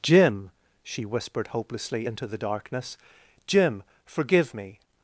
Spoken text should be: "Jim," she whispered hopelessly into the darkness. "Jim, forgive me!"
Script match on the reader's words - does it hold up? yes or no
yes